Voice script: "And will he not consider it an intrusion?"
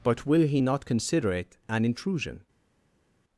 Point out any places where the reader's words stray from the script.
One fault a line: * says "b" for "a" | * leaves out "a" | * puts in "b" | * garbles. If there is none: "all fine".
* says "But" for "And"